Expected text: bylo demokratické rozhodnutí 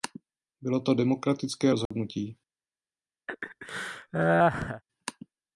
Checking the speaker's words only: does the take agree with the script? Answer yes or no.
no